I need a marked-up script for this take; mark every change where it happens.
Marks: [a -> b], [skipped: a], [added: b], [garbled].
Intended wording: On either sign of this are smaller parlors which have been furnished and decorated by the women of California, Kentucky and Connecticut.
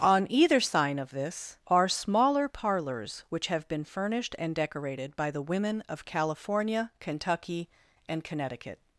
On either sign of this are smaller parlors which have been furnished and decorated by the women of California, Kentucky and Connecticut.